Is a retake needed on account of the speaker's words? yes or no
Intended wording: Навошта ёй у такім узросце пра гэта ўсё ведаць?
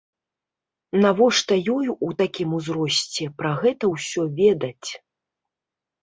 no